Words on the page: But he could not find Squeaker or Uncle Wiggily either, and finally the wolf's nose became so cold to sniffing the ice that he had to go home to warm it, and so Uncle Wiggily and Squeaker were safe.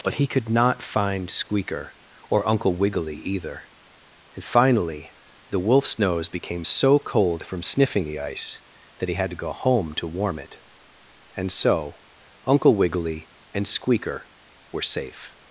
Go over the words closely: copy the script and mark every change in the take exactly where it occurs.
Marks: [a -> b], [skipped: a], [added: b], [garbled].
But he could not find Squeaker or Uncle Wiggily either, and finally the wolf's nose became so cold [to -> from] sniffing the ice that he had to go home to warm it, and so Uncle Wiggily and Squeaker were safe.